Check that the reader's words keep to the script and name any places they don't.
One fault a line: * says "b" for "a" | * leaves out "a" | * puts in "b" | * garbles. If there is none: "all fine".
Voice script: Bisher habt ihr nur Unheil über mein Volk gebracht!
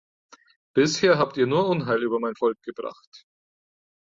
all fine